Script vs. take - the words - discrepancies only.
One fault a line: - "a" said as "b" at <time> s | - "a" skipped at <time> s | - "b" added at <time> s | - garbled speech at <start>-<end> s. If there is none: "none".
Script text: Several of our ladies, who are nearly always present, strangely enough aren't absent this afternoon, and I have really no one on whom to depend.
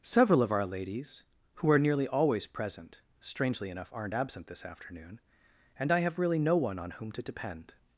none